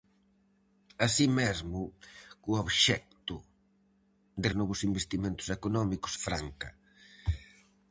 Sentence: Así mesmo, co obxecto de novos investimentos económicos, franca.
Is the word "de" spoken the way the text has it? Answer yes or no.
yes